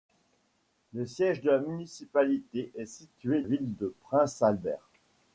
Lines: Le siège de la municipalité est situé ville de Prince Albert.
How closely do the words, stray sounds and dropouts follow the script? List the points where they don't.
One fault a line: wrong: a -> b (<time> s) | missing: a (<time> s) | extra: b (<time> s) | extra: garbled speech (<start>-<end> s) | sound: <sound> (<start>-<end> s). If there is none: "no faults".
no faults